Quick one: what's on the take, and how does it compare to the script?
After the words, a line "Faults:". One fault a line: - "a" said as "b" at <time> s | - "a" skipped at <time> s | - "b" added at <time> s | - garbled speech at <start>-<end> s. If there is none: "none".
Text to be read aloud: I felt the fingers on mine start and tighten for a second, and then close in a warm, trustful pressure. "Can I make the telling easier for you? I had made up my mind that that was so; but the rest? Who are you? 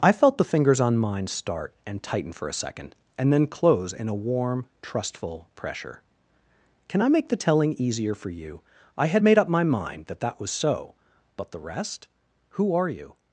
I felt the fingers on mine start and tighten for a second, and then close in a warm, trustful pressure. "Can I make the telling easier for you? I had made up my mind that that was so; but the rest? Who are you?
Faults:
none